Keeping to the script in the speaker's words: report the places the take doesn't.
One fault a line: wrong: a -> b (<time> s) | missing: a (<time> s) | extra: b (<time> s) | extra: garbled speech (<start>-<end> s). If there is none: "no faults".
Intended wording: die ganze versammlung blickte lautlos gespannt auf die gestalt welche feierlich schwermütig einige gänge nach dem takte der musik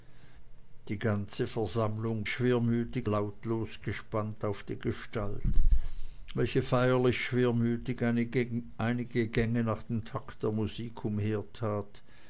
wrong: blickte -> schwermütig (2.3 s)